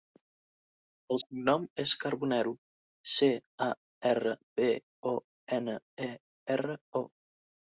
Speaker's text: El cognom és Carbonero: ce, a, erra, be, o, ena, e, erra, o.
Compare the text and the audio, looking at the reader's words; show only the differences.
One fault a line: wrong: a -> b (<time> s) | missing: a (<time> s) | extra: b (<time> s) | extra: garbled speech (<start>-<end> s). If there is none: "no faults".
no faults